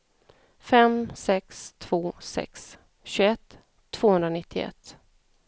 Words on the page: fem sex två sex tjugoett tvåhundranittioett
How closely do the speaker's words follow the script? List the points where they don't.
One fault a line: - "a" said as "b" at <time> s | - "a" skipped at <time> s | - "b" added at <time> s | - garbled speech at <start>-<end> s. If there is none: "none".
none